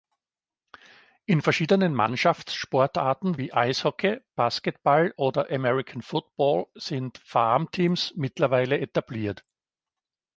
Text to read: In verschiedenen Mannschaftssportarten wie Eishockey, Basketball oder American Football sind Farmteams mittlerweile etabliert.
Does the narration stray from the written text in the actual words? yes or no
no